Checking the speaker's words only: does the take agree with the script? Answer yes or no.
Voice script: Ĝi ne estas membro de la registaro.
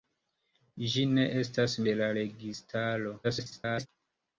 no